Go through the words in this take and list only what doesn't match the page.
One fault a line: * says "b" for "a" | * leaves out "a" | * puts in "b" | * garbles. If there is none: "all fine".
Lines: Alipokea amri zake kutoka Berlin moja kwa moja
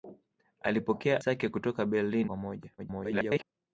* leaves out "amri"
* leaves out "moja"
* garbles